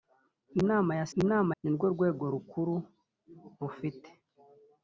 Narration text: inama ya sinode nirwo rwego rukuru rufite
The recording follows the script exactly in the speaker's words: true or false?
false